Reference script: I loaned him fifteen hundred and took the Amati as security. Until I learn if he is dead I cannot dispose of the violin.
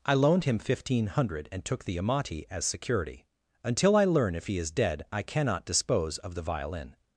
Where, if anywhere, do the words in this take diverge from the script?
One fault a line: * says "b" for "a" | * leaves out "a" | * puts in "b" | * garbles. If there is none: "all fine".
all fine